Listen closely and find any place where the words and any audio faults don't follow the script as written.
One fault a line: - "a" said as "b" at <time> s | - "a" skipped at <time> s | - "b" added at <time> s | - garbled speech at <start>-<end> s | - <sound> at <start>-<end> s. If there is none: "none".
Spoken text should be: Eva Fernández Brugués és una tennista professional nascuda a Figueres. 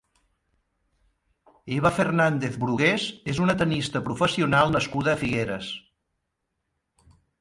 none